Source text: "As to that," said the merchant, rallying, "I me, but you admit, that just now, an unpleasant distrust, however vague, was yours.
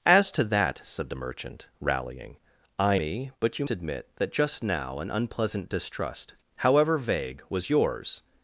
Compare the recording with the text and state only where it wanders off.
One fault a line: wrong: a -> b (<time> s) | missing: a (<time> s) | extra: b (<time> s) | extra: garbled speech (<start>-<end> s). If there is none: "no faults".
no faults